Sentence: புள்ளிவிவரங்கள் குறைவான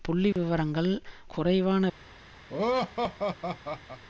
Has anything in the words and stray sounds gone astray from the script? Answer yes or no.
yes